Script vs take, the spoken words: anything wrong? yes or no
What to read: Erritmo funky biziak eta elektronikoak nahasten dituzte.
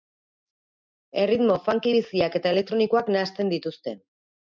no